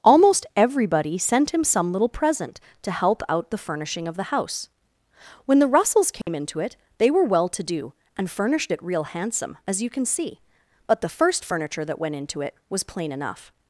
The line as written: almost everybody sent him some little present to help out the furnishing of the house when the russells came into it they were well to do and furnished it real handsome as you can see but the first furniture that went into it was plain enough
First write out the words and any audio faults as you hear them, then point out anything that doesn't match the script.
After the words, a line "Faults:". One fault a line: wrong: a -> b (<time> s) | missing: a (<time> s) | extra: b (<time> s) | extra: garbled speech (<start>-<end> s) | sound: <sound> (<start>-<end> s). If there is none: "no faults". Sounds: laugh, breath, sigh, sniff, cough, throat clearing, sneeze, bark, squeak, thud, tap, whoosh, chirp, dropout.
almost everybody sent him some little present to help out the furnishing of the house when the russells came into it they were well to do and furnished it real handsome as you can see but the first furniture that went into it was plain enough
Faults:
sound: dropout (6.2-6.3 s)